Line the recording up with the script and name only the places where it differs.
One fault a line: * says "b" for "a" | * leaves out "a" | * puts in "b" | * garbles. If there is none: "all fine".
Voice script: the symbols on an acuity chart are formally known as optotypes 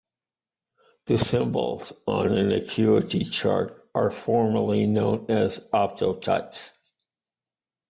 all fine